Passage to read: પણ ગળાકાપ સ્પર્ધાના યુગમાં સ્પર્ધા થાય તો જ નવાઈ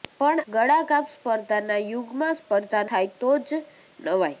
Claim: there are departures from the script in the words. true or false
false